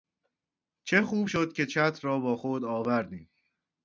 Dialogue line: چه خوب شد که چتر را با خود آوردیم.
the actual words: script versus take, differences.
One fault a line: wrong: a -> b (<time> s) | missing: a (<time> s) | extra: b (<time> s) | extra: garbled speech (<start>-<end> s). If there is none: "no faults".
no faults